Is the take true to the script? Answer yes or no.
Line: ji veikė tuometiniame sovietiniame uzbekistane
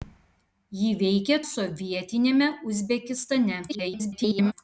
no